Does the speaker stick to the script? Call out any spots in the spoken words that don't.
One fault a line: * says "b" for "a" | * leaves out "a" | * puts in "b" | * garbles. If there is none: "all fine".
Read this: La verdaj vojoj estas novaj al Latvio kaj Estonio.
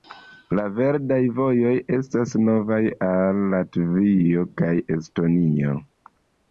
all fine